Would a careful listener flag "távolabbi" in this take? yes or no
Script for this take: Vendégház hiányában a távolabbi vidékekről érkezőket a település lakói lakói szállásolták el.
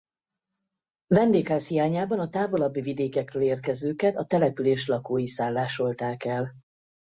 no